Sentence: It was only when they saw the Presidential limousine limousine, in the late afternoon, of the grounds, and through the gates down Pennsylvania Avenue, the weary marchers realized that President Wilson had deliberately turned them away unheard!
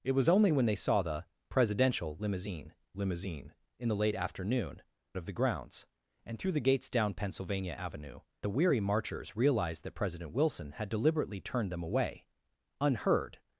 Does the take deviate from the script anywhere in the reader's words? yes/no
no